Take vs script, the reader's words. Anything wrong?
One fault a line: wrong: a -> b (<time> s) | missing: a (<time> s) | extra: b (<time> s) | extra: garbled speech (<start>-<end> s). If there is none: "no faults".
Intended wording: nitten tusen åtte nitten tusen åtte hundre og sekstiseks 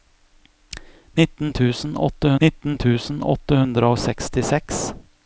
no faults